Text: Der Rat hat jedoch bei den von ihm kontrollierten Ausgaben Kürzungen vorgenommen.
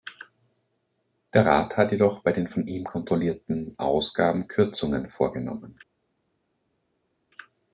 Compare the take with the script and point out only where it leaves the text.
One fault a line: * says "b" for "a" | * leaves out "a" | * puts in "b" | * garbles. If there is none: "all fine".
all fine